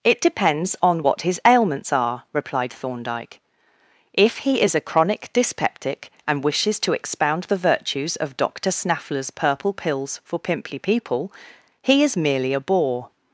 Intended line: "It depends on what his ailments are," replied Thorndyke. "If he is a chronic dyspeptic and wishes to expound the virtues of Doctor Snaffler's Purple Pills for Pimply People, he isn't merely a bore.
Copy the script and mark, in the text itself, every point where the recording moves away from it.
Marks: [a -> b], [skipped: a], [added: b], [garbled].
"It depends on what his ailments are," replied Thorndyke. "If he is a chronic dyspeptic and wishes to expound the virtues of Doctor Snaffler's Purple Pills for Pimply People, he [isn't -> is] merely a bore.